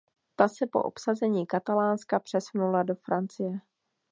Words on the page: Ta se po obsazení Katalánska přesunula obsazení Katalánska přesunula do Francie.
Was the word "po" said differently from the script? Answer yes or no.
no